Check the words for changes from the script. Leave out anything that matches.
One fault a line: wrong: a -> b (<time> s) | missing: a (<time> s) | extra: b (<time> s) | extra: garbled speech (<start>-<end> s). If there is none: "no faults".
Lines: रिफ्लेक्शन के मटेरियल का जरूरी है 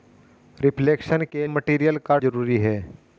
no faults